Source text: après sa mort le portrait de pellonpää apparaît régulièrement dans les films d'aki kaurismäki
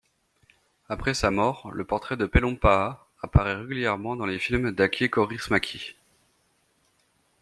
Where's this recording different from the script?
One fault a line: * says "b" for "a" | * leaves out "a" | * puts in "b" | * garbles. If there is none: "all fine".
all fine